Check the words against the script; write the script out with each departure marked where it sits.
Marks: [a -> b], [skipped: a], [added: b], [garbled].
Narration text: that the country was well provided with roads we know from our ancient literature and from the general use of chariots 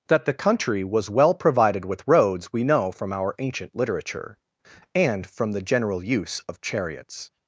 that the country was well provided with roads we know from our ancient literature and from the general use of chariots